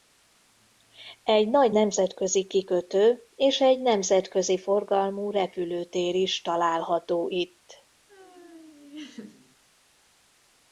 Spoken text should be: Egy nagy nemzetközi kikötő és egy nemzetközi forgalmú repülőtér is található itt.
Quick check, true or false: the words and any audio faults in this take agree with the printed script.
false